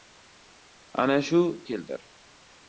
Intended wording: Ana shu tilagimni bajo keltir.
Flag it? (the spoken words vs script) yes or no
yes